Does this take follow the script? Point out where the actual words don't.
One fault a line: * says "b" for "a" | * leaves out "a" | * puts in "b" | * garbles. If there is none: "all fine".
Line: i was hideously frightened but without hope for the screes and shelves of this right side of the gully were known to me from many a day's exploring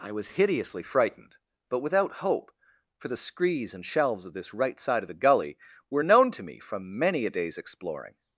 all fine